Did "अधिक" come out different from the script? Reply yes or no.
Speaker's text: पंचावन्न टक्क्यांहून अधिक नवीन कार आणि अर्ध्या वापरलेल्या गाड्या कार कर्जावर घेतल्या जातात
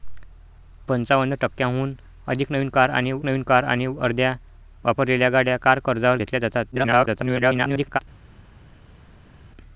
no